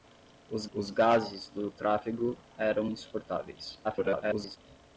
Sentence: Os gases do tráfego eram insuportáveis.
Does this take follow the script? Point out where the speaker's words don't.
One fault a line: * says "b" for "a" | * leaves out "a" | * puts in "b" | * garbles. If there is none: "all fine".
* puts in "os"
* garbles